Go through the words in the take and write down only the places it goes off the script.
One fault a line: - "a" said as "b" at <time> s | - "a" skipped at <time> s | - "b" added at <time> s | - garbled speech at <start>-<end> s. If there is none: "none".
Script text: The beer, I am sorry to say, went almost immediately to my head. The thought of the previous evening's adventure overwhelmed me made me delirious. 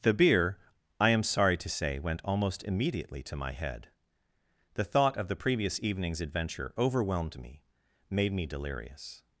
none